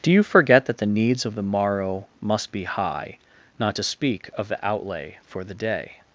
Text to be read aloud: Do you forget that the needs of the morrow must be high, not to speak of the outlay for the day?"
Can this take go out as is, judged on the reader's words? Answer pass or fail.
pass